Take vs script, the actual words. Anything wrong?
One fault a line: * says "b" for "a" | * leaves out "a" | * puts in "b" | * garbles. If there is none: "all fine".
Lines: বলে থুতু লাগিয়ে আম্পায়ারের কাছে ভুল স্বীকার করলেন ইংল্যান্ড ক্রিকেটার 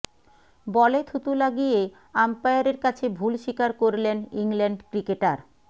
all fine